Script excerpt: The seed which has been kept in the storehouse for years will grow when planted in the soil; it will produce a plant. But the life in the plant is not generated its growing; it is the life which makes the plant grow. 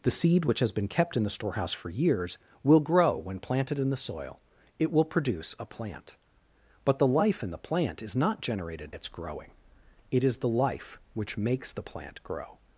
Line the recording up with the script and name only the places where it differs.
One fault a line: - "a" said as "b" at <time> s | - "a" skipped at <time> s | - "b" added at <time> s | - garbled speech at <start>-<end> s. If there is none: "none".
none